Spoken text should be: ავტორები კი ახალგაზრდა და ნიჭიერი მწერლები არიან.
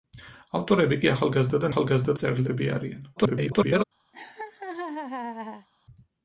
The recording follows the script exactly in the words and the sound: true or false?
false